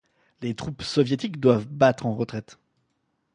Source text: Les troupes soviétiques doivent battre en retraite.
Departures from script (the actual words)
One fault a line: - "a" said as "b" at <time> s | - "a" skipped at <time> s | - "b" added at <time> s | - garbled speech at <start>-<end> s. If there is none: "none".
none